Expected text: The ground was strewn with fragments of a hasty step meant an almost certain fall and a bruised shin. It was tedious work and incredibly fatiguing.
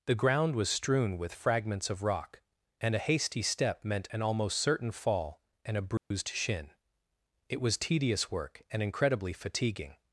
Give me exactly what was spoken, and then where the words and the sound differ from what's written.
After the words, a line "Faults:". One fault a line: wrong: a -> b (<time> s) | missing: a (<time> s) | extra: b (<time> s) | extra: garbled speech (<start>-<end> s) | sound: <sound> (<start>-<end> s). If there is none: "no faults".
The ground was strewn with fragments of rock, and a hasty step meant an almost certain fall and a bruised shin. It was tedious work and incredibly fatiguing.
Faults:
extra: rock and (2.0 s)
sound: dropout (6.0-6.1 s)